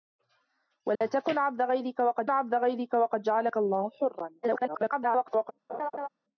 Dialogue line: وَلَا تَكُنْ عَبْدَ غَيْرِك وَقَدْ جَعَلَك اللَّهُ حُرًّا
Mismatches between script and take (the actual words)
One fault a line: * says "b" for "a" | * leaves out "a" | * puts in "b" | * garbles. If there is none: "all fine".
* puts in "عَبْدَ غَيْرِك وَقَدْ"
* garbles